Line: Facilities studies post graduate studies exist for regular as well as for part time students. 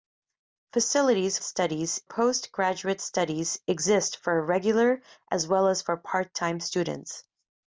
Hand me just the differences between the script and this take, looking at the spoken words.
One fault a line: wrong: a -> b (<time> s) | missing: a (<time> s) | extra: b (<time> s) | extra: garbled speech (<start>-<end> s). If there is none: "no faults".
no faults